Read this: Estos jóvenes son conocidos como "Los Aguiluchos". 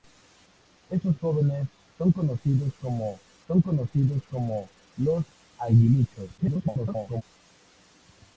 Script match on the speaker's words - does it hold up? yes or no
no